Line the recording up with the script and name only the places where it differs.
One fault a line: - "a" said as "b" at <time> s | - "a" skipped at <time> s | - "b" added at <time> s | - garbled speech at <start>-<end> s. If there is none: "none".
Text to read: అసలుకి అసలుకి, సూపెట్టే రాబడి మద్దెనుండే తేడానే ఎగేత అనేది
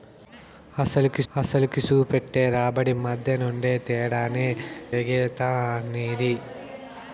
none